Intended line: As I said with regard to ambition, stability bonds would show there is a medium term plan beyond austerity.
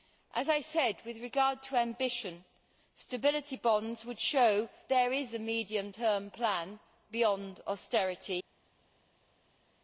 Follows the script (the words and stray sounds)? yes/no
yes